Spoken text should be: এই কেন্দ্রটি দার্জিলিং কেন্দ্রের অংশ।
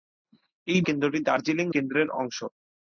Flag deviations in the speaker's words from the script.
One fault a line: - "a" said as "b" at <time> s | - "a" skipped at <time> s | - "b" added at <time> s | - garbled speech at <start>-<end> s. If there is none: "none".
none